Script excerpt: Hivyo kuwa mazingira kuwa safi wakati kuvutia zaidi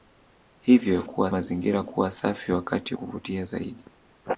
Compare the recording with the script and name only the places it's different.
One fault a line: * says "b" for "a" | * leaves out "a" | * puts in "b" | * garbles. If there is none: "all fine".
all fine